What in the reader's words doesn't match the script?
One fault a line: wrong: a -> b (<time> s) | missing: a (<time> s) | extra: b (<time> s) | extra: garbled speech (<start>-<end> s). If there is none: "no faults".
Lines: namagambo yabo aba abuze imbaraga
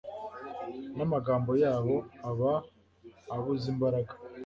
no faults